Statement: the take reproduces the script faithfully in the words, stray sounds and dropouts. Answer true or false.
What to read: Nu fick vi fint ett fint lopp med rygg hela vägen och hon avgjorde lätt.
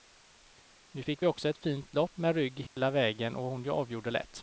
false